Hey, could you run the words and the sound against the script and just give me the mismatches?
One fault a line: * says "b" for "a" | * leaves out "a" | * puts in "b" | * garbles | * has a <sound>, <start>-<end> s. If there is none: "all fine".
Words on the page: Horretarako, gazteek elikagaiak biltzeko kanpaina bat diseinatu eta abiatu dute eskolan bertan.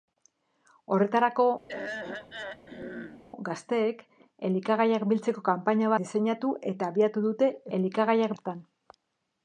* has a throat clearing, 1.7-3.2 s
* leaves out "bat"
* says "elikagaiak" for "eskolan"